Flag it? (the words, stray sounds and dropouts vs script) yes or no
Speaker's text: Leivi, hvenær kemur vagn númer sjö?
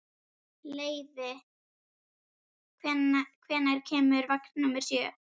no